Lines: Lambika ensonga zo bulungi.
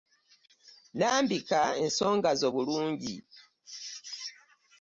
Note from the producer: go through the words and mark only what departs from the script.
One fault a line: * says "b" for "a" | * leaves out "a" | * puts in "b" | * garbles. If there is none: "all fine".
all fine